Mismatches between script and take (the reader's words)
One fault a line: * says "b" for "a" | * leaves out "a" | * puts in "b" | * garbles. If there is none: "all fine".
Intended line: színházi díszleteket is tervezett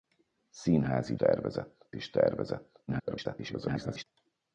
* says "tervezett" for "díszleteket"
* garbles